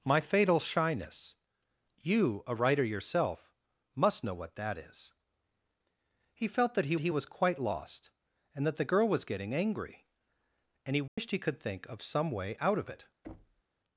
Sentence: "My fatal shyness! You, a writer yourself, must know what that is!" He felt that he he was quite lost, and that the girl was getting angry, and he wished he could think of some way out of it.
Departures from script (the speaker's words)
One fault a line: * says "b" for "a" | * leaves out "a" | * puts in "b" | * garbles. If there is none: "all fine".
all fine